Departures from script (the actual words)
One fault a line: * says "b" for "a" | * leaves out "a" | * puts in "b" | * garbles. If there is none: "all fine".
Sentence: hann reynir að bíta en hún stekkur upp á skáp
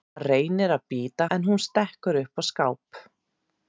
all fine